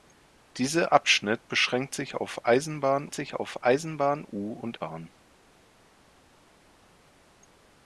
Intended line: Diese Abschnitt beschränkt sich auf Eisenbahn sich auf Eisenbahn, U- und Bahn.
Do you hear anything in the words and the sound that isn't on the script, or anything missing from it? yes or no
no